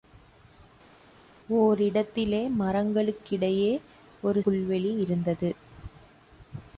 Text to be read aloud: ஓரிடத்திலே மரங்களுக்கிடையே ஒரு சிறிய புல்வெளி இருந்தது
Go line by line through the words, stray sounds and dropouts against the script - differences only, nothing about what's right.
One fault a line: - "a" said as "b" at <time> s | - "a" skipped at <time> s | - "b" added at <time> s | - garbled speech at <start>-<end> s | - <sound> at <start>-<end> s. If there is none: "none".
- "சிறிய" skipped at 4.4 s